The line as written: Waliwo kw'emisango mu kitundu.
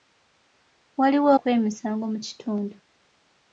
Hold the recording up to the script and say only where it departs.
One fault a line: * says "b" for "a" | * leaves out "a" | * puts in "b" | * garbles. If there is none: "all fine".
all fine